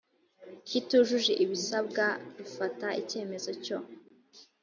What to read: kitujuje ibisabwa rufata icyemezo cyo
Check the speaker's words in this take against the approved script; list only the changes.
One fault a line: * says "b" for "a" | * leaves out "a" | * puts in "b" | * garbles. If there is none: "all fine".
all fine